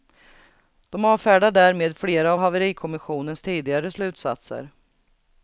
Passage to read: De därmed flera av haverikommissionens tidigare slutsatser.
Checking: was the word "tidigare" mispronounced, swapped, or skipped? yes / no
no